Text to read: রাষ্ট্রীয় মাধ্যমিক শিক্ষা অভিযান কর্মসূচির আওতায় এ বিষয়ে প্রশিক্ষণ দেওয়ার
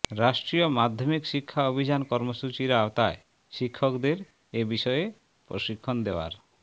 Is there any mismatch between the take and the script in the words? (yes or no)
yes